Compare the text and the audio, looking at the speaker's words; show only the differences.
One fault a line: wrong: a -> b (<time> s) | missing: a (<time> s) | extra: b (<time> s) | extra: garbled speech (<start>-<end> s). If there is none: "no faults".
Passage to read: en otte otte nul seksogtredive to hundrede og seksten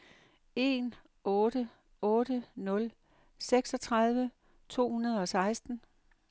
no faults